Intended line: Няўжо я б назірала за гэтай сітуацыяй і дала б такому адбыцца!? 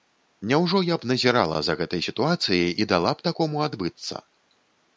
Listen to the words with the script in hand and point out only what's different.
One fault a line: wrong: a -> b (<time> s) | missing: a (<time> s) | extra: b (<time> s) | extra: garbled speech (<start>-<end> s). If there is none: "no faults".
no faults